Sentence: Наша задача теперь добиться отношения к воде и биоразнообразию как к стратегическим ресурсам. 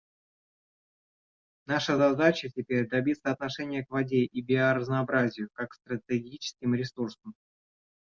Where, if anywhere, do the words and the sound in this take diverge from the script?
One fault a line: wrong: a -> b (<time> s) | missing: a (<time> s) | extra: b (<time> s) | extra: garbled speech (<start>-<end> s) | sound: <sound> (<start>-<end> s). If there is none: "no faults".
no faults